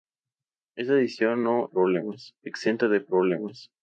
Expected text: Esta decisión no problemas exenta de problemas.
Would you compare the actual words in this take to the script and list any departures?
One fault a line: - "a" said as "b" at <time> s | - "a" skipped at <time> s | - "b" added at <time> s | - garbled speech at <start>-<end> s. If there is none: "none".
none